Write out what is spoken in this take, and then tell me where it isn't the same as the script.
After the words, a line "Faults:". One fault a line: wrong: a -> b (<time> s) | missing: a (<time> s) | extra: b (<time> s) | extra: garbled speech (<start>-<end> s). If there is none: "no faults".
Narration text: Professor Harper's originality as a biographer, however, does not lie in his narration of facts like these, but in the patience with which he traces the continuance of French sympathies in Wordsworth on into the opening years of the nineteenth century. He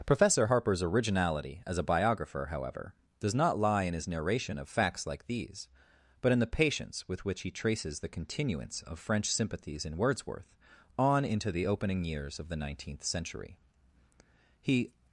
Professor Harper's originality as a biographer, however, does not lie in his narration of facts like these, but in the patience with which he traces the continuance of French sympathies in Wordsworth on into the opening years of the nineteenth century. He
Faults:
no faults